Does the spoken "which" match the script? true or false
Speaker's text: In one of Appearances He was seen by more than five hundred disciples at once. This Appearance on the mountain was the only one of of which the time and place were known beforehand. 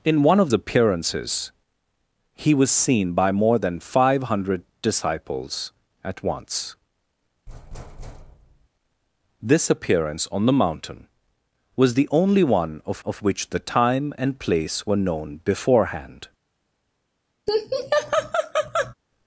true